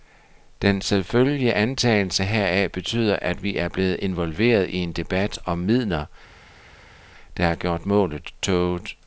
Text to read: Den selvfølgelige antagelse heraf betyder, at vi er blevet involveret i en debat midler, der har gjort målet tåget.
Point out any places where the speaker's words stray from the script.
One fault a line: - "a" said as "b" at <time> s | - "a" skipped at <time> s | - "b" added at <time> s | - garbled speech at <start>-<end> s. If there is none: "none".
- "om" added at 5.5 s